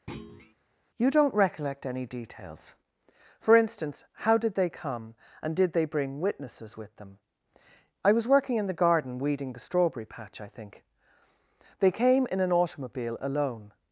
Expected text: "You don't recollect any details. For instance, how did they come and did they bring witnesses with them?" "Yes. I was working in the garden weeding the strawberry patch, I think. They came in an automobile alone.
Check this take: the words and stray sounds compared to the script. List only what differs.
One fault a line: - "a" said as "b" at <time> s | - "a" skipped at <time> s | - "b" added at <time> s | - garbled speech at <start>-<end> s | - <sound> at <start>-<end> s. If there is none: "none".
- thud at 0.1-0.5 s
- "Yes" skipped at 7.2 s